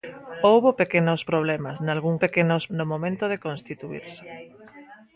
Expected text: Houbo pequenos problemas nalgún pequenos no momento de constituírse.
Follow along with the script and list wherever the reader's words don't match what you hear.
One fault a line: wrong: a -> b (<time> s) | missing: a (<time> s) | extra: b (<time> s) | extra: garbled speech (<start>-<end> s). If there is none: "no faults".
no faults